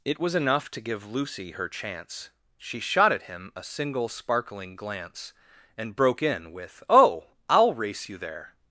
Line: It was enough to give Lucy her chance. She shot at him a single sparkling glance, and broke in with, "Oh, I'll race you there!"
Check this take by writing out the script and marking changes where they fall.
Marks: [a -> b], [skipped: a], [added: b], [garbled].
It was enough to give Lucy her chance. She shot at him a single sparkling glance, and broke in with, "Oh, I'll race you there!"